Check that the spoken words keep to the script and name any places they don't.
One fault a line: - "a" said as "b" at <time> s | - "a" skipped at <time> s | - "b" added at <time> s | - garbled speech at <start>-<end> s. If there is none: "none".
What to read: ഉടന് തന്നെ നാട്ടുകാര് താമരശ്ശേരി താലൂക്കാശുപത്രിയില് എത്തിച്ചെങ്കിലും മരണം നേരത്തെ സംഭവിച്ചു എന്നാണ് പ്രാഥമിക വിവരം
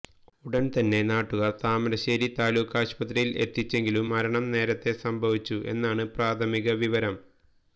none